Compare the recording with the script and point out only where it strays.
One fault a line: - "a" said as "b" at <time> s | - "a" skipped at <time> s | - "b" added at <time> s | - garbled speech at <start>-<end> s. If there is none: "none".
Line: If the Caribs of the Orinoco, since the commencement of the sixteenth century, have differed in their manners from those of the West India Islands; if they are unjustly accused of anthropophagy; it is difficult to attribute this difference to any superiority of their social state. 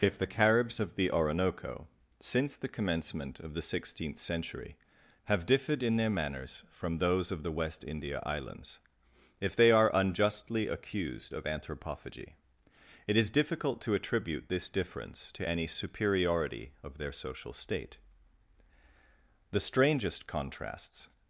- "The strangest contrasts" added at 19.5 s